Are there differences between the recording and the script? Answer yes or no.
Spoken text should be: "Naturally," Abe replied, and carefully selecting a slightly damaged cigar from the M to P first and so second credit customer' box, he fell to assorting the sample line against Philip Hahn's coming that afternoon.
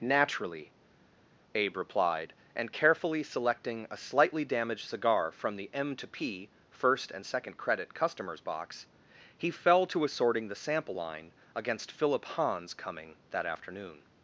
yes